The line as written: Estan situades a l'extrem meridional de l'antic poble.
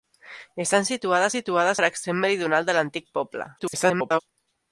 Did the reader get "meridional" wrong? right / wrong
right